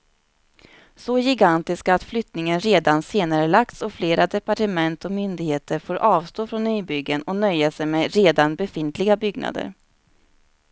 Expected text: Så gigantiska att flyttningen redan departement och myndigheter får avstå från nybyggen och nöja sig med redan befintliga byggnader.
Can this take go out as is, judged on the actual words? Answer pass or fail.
fail